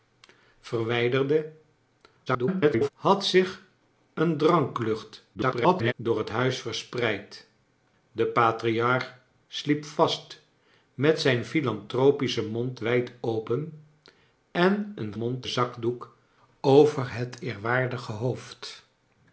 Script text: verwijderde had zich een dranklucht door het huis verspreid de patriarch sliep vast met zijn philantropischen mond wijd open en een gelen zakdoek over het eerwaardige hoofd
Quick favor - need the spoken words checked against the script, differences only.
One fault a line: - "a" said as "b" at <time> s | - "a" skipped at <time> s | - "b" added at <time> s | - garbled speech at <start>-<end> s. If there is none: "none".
- garbled speech at 2.3-2.9 s
- garbled speech at 5.3-5.9 s
- "gelen" said as "mond" at 15.1 s